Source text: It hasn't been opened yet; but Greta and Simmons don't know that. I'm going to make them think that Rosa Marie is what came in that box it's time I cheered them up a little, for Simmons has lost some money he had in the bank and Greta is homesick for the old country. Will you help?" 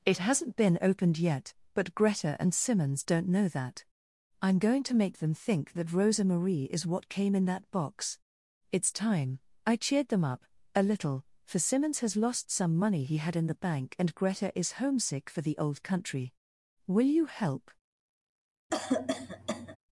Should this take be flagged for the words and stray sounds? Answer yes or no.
yes